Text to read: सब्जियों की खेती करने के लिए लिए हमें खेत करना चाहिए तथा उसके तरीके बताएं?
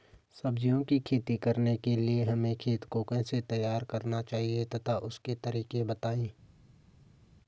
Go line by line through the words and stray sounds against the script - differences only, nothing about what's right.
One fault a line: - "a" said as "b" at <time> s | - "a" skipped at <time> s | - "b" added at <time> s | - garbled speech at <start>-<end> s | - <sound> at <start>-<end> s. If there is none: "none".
- "लिए" skipped at 2.2 s
- "को कैसे तैयार" added at 2.9 s